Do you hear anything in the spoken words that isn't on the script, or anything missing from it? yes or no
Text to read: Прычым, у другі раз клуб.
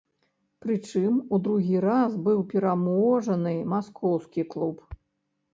yes